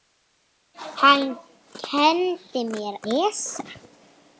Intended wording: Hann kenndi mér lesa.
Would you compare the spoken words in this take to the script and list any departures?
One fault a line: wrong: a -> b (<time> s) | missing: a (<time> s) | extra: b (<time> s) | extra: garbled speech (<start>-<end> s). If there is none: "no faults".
no faults